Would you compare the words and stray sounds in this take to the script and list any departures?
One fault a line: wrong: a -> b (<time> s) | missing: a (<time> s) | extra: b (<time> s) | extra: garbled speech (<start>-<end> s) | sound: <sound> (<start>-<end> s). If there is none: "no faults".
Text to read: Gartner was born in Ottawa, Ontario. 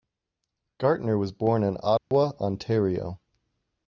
sound: dropout (2.0-2.1 s)